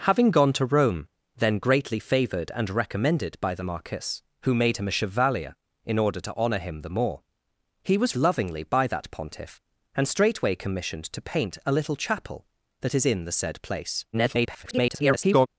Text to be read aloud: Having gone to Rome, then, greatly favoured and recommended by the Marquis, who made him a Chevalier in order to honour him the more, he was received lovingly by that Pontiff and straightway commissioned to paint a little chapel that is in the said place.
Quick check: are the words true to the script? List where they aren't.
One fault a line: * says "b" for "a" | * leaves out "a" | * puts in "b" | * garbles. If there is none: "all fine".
* leaves out "received"
* garbles